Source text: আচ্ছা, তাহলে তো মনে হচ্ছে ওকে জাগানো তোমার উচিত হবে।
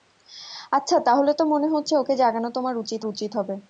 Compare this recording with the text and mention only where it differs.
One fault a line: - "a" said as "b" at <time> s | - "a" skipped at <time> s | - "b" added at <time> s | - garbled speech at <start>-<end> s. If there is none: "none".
- "উচিত" added at 3.1 s